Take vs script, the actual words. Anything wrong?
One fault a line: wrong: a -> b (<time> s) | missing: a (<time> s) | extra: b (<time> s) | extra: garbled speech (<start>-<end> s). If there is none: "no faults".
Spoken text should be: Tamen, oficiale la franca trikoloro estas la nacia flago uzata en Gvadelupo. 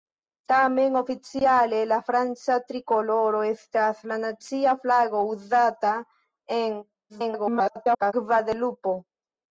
extra: garbled speech (7.1-8.1 s)